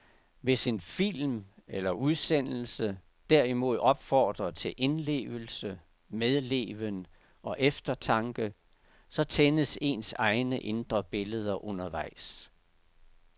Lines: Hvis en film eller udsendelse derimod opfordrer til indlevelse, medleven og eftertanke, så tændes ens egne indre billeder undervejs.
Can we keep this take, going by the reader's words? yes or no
yes